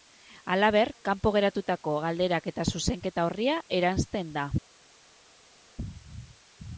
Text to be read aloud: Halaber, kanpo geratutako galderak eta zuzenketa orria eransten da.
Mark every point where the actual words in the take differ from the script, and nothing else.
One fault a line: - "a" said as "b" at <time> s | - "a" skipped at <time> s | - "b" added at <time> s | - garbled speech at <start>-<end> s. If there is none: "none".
none